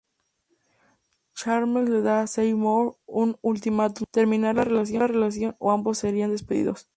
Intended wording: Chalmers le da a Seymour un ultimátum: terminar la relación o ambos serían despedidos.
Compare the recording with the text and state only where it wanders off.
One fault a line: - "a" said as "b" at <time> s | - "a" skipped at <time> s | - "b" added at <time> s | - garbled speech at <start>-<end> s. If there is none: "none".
none